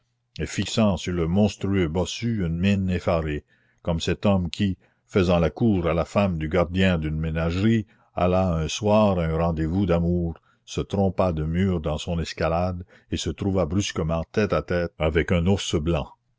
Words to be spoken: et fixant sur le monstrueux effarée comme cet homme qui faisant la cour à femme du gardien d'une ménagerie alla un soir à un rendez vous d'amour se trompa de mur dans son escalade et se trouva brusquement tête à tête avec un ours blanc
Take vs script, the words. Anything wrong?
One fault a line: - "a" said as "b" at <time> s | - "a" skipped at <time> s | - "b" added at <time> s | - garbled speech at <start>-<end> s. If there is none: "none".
- "bossu une mine" added at 1.9 s
- "la" added at 5.9 s